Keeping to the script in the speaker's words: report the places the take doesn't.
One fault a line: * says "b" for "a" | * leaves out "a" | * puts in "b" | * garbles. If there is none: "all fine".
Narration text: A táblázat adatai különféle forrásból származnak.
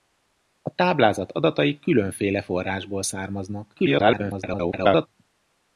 * garbles